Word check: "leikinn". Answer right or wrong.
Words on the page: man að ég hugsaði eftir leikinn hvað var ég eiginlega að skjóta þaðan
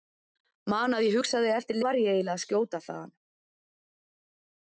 wrong